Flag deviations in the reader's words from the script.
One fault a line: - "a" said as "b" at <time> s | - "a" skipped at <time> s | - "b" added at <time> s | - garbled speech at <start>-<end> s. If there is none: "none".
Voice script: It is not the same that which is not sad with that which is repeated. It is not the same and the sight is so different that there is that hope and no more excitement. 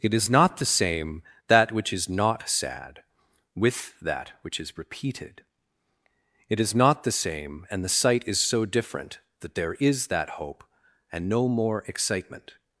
none